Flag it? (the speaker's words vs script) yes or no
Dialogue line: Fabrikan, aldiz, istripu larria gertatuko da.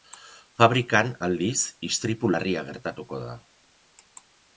no